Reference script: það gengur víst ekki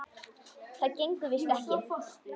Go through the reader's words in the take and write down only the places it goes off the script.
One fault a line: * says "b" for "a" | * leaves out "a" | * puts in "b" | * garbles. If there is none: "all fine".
all fine